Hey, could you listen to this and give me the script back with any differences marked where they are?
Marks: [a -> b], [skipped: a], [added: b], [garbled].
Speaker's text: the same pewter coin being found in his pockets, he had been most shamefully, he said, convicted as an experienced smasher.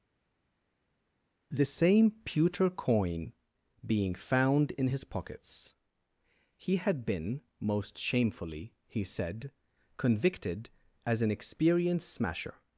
the same pewter coin being found in his pockets, he had been most shamefully, he said, convicted as an experienced smasher.